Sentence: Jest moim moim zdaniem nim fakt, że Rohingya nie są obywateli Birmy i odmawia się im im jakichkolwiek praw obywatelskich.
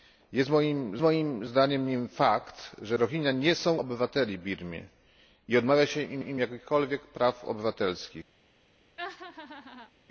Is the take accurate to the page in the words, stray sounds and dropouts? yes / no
no